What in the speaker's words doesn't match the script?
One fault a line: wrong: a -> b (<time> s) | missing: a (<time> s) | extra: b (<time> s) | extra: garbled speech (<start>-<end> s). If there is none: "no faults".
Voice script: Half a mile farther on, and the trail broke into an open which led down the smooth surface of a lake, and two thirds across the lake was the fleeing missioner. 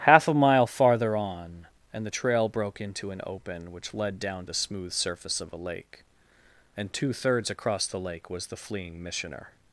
no faults